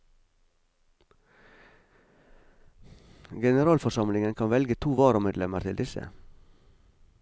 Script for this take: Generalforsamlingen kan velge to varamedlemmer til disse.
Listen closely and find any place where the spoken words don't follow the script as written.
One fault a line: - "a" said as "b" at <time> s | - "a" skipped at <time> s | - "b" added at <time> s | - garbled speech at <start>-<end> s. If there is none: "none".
none